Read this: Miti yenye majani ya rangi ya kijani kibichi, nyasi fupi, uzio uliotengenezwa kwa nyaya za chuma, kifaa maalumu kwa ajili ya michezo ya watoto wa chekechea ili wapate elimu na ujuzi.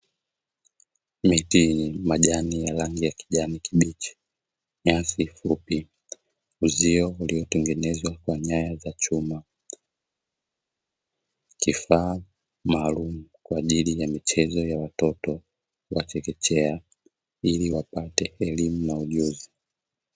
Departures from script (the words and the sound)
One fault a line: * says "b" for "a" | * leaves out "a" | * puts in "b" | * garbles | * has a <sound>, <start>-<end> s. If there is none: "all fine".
all fine